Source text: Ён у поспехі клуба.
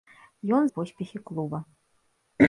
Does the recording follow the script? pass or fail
pass